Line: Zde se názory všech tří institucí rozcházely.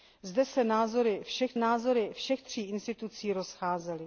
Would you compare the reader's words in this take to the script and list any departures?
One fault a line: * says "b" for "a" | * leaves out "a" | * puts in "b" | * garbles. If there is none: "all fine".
* puts in "názory všech"